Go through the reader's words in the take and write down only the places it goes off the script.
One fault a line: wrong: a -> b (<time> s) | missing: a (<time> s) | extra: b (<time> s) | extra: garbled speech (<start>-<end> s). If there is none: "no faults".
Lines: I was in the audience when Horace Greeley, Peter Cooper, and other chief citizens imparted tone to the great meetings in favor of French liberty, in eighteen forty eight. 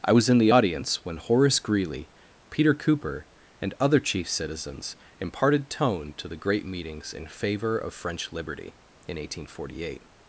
no faults